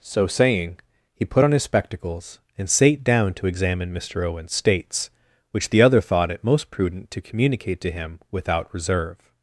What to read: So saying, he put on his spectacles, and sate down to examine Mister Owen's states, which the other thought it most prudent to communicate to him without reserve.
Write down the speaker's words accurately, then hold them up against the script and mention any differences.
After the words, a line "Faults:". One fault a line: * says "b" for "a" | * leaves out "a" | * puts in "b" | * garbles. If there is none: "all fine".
So saying, he put on his spectacles, and sate down to examine Mister Owen's states, which the other thought it most prudent to communicate to him without reserve.
Faults:
all fine